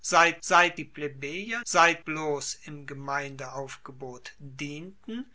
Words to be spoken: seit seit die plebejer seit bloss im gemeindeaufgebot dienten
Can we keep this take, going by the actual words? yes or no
yes